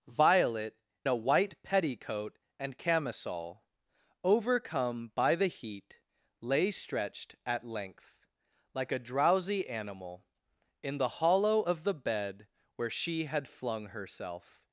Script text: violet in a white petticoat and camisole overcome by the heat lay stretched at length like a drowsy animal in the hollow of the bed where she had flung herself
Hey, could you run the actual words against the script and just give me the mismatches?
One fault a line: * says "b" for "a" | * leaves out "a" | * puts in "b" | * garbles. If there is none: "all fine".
* leaves out "in"